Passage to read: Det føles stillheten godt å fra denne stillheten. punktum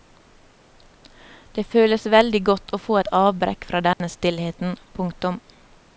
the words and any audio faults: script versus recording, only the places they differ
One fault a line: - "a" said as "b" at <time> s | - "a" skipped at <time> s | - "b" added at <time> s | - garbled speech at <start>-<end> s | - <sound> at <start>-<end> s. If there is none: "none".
- "stillheten" said as "veldig" at 2.1 s
- "få et avbrekk" added at 2.9 s
- dropout at 3.9-4.0 s